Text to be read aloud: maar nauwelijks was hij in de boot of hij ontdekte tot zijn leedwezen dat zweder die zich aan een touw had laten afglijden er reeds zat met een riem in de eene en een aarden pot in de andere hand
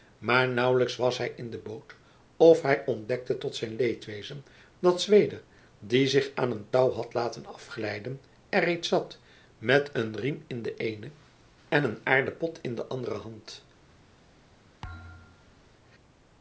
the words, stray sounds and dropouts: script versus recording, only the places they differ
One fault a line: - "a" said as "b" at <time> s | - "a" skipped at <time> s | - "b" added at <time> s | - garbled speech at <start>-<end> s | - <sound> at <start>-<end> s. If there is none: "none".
- thud at 14.8-15.6 s